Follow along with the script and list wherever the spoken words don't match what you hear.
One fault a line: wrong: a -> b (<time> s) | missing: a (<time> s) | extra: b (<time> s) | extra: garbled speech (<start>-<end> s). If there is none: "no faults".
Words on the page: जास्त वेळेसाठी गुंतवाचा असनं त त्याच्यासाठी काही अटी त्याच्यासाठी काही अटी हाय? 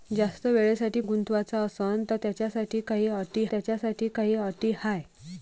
no faults